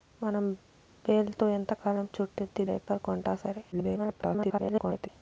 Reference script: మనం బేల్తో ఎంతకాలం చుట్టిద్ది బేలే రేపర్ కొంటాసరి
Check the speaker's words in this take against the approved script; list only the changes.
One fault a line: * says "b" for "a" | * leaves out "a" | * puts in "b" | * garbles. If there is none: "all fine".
* leaves out "బేలే"
* garbles